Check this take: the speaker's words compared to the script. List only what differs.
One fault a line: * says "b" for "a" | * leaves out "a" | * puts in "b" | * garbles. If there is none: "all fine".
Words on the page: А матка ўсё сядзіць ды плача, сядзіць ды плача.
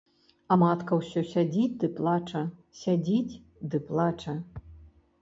all fine